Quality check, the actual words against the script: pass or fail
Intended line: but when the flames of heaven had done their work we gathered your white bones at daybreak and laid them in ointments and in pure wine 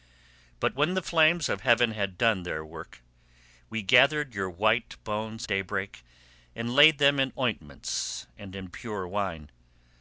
fail